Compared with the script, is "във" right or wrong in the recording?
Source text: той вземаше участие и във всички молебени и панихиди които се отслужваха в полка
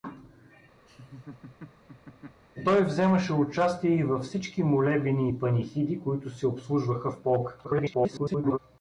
right